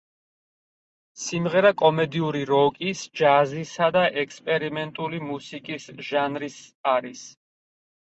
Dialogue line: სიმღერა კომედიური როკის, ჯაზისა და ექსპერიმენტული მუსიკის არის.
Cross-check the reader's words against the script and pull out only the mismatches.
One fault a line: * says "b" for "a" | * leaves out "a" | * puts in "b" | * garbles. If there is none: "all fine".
* puts in "ჟანრის"